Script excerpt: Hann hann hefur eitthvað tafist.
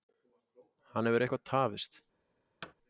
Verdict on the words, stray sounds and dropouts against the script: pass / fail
fail